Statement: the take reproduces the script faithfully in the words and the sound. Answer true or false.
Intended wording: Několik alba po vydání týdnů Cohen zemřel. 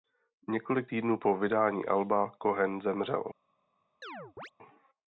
false